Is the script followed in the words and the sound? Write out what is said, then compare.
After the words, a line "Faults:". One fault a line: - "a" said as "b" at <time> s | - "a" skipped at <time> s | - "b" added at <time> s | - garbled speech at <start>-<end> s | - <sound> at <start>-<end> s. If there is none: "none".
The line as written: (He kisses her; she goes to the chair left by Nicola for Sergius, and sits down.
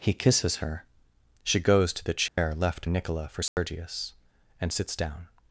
(He kisses her; she goes to the chair left Nicola for Sergius, and sits down.
Faults:
- dropout at 2.3-2.4 s
- "by" skipped at 2.9 s
- dropout at 3.5-3.6 s